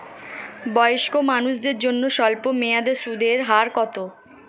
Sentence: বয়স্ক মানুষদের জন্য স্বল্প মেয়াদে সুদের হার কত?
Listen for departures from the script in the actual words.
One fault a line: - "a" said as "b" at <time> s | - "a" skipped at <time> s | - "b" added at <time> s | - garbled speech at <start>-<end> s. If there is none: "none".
none